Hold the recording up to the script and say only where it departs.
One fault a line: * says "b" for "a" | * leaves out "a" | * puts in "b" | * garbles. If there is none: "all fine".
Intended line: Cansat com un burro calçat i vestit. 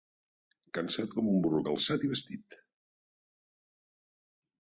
all fine